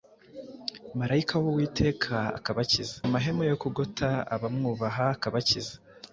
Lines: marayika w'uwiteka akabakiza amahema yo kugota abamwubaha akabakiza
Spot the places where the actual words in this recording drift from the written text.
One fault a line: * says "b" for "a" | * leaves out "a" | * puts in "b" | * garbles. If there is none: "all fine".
all fine